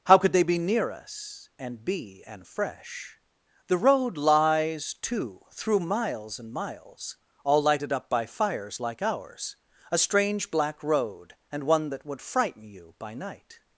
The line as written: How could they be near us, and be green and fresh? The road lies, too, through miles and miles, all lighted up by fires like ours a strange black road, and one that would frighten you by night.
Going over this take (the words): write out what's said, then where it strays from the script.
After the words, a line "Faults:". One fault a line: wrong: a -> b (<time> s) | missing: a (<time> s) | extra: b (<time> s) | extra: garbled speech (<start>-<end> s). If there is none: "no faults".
How could they be near us, and be and fresh? The road lies, too, through miles and miles, all lighted up by fires like ours a strange black road, and one that would frighten you by night.
Faults:
missing: green (2.2 s)